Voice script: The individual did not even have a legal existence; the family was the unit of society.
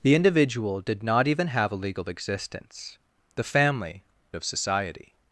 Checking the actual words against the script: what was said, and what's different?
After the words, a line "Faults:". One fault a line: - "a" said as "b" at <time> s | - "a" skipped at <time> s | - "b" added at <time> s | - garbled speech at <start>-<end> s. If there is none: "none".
The individual did not even have a legal existence; the family of society.
Faults:
- "was the unit" skipped at 4.0 s